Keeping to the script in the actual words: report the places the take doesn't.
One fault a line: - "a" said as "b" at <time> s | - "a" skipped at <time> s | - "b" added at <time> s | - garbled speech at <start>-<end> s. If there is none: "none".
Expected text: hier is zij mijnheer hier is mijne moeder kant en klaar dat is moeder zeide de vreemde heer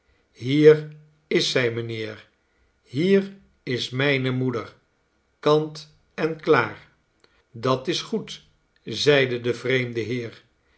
- "moeder" said as "goed" at 8.0 s